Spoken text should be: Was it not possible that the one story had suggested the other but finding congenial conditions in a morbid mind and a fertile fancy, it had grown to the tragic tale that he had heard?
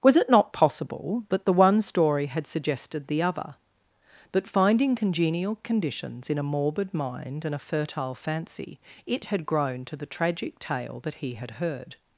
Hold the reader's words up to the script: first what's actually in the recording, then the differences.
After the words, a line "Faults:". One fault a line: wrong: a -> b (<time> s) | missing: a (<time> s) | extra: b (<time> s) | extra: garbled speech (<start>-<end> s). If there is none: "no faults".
Was it not possible that the one story had suggested the other but finding congenial conditions in a morbid mind and a fertile fancy, it had grown to the tragic tale that he had heard?
Faults:
no faults